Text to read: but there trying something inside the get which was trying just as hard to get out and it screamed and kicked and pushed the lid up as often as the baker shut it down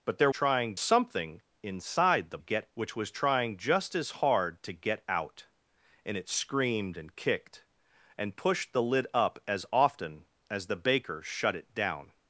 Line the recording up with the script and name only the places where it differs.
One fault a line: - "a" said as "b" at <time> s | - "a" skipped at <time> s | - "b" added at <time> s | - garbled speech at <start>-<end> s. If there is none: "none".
none